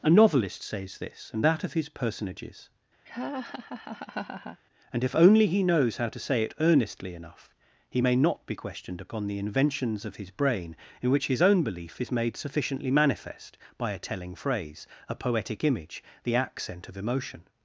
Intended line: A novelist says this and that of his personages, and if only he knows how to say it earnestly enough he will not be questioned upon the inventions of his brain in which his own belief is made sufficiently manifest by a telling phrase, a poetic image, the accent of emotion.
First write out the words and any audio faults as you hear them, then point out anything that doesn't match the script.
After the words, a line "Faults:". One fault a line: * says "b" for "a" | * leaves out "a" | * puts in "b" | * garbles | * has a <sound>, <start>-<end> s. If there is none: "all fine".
A novelist says this and that of his personages, and if only he knows how to say it earnestly enough he may not be questioned upon the inventions of his brain in which his own belief is made sufficiently manifest by a telling phrase, a poetic image, the accent of emotion.
Faults:
* has a laugh, 3.1-4.6 s
* says "may" for "will"